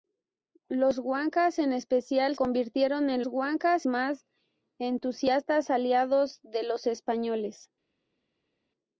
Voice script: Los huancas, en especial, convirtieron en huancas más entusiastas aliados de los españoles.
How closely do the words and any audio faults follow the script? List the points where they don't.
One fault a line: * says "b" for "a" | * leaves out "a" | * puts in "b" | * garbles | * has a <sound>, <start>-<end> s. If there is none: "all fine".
all fine